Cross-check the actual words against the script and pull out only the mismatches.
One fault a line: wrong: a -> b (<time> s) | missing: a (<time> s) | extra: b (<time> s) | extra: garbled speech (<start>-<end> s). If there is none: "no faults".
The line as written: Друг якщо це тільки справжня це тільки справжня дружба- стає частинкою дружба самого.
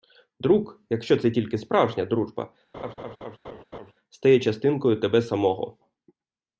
missing: це тільки справжня (2.0 s)
wrong: дружба -> тебе (5.0 s)